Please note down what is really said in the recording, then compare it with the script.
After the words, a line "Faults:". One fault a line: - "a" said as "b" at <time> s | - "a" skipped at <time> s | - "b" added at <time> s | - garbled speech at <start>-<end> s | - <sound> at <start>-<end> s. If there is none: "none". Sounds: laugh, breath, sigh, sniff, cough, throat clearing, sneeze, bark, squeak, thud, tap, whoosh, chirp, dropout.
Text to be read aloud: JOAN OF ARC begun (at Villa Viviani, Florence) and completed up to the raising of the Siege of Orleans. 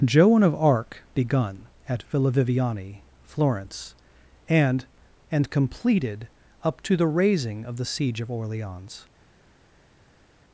JOAN OF ARC begun (at Villa Viviani, Florence) and and completed up to the raising of the Siege of Orleans.
Faults:
- "and" added at 5.3 s